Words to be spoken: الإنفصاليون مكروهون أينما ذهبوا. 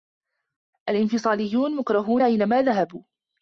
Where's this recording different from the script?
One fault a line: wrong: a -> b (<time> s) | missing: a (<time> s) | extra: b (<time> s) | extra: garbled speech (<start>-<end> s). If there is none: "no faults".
no faults